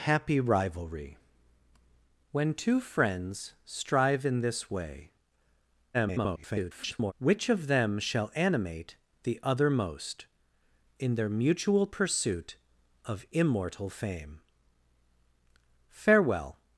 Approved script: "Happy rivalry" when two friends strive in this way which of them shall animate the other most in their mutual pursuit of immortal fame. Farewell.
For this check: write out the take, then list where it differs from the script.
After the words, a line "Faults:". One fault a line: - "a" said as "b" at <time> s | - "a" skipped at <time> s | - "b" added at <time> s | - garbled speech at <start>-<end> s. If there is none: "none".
"Happy rivalry" when two friends strive in this way [garbled] which of them shall animate the other most in their mutual pursuit of immortal fame. Farewell.
Faults:
- garbled speech at 5.9-7.1 s